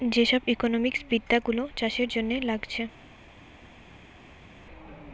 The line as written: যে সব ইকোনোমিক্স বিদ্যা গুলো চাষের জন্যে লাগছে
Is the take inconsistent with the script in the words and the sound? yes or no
no